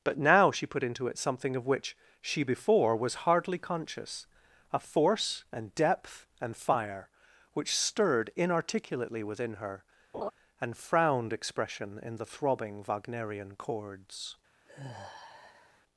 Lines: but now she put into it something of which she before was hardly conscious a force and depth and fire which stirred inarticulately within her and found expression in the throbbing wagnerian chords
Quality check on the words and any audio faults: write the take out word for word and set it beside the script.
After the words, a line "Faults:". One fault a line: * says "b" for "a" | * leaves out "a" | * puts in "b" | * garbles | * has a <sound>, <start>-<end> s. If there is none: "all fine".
but now she put into it something of which she before was hardly conscious a force and depth and fire which stirred inarticulately within her and frowned expression in the throbbing wagnerian chords
Faults:
* has a laugh, 10.1-10.3 s
* says "frowned" for "found"
* has a sigh, 14.7-15.8 s